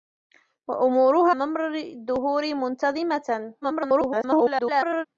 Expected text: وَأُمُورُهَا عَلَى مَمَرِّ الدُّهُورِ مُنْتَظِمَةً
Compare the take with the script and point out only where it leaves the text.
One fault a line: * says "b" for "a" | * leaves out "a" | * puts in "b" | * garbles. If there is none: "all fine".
* leaves out "عَلَى"
* garbles